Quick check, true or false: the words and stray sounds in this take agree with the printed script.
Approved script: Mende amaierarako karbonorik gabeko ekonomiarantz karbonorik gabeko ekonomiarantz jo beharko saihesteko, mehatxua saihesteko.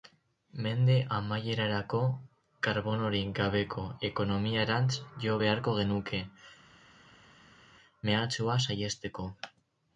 false